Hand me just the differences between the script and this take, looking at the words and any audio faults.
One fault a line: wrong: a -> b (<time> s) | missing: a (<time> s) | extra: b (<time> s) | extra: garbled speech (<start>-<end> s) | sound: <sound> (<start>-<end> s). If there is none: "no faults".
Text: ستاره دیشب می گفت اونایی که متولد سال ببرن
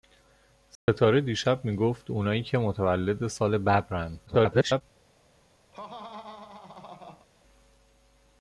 sound: dropout (0.8-0.9 s)
extra: garbled speech (4.3-4.8 s)
sound: laugh (5.7-7.3 s)